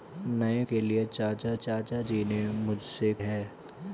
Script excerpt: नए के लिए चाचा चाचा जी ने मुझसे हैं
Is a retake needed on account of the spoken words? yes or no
no